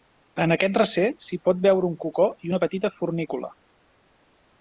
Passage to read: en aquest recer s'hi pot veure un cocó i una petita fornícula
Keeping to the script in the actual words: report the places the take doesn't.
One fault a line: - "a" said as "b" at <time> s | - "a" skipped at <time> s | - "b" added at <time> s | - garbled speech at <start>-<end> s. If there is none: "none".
none